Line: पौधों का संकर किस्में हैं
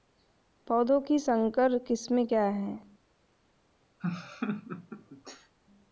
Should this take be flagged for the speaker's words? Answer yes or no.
yes